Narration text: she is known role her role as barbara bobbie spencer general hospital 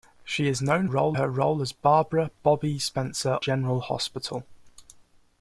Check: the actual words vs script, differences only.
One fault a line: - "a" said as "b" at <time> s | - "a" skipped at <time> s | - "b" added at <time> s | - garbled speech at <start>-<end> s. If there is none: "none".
none